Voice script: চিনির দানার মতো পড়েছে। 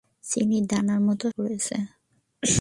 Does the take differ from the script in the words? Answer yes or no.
no